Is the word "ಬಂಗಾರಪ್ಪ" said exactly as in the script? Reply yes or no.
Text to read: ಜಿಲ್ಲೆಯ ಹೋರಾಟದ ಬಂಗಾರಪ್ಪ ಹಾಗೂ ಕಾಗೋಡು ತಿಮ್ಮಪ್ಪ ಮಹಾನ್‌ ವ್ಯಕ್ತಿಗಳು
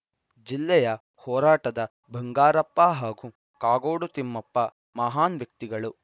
yes